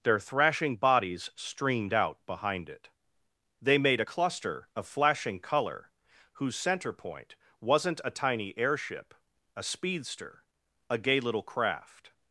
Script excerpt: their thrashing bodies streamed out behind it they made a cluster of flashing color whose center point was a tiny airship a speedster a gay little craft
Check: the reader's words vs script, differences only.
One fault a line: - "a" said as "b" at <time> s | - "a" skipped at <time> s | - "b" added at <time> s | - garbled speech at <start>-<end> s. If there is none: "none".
- "was" said as "wasn't" at 7.6 s